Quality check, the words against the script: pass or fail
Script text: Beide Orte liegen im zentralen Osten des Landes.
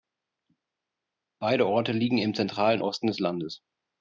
pass